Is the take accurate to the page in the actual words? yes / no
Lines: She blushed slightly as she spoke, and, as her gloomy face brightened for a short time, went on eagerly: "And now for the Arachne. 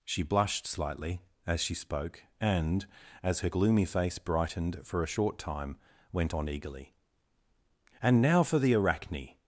yes